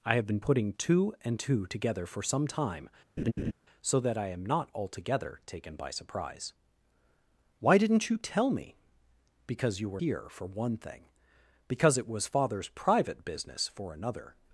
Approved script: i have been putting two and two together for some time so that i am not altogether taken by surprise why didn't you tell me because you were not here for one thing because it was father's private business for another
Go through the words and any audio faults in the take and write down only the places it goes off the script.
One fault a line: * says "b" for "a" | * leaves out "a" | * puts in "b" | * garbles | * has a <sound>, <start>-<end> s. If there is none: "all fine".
* has a laugh, 3.2-3.5 s
* leaves out "not"